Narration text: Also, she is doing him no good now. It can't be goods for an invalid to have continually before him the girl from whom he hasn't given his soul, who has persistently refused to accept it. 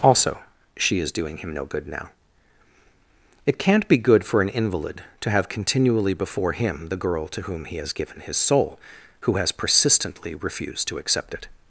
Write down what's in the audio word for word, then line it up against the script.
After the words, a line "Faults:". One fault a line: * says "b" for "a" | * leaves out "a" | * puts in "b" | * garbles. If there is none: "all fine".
Also, she is doing him no good now. It can't be good for an invalid to have continually before him the girl to whom he has given his soul, who has persistently refused to accept it.
Faults:
* says "good" for "goods"
* says "to" for "from"
* says "has" for "hasn't"